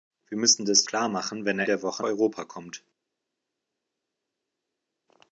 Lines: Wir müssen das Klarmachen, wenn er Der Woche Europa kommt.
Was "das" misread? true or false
false